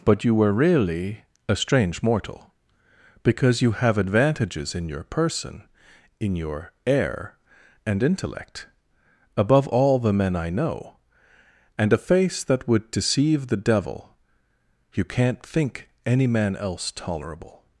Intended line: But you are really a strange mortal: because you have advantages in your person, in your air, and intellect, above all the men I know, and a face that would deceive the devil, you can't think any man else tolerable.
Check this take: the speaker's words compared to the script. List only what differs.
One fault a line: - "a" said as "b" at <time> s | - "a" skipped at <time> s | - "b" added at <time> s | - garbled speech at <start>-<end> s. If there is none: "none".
- "are" said as "were" at 0.3 s